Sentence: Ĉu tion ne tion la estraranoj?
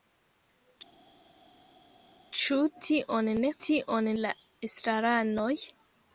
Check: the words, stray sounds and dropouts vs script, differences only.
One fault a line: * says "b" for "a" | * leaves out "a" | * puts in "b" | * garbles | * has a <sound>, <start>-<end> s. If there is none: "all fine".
all fine